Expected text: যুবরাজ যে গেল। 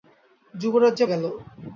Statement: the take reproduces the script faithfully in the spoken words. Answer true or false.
true